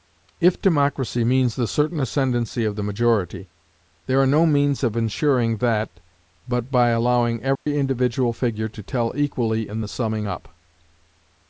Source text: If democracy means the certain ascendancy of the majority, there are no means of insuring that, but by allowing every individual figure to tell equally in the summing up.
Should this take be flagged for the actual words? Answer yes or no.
no